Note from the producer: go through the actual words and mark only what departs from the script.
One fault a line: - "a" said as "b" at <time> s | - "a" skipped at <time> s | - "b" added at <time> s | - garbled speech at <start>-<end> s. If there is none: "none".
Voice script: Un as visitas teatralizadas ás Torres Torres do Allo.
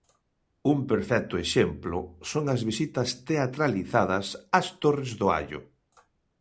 - "perfecto exemplo son" added at 0.9 s
- "Torres" skipped at 5.1 s